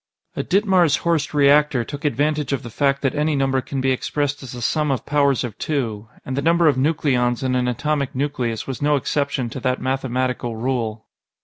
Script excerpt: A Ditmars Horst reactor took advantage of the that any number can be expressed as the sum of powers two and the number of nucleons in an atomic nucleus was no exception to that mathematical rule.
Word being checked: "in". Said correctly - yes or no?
yes